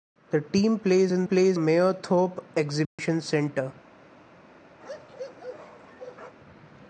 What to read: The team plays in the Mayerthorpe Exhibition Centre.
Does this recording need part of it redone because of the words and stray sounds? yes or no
yes